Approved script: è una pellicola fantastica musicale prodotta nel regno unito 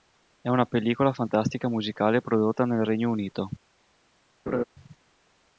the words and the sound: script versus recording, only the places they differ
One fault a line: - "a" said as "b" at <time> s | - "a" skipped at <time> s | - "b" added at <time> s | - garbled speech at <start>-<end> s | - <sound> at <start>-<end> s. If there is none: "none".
- laugh at 4.5-4.6 s